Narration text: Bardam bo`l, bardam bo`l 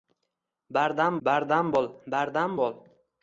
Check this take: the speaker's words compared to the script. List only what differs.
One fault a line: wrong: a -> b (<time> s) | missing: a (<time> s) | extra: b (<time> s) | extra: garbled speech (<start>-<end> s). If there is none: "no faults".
extra: bardam (1.3 s)